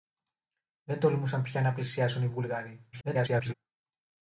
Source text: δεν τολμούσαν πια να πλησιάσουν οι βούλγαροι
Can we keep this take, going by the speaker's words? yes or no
no